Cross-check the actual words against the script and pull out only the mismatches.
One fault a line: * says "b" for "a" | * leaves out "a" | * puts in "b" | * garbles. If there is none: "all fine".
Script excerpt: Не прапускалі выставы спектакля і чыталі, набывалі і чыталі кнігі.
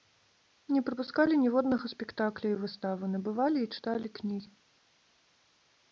* says "ніводнага" for "выставы"
* says "выставы" for "чыталі"